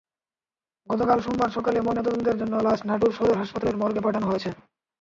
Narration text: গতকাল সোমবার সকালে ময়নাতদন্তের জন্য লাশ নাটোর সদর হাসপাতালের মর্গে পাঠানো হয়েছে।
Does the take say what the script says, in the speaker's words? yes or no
yes